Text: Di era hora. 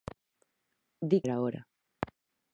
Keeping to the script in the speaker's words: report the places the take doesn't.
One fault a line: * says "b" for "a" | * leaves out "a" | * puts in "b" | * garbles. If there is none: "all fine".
all fine